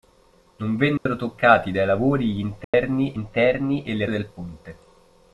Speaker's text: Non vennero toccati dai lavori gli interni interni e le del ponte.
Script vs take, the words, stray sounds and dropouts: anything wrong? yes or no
yes